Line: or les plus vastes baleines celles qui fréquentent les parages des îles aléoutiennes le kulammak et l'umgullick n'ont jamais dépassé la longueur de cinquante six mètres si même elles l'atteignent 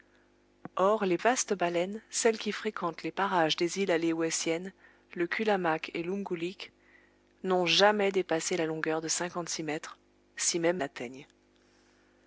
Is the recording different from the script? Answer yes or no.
yes